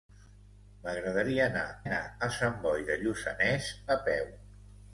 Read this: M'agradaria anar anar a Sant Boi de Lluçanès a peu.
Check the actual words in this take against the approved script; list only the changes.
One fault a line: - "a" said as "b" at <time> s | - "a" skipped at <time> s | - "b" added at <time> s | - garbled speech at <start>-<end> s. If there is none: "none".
none